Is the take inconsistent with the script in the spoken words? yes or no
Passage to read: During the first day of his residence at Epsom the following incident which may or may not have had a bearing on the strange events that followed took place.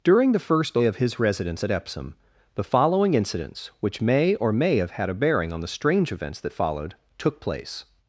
yes